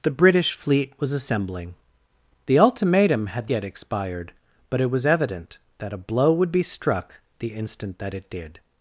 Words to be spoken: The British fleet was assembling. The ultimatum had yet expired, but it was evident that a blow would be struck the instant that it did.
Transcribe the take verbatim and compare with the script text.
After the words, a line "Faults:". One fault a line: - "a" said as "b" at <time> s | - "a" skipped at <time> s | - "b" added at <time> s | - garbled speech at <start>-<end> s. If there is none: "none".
The British fleet was assembling. The ultimatum had yet expired, but it was evident that a blow would be struck the instant that it did.
Faults:
none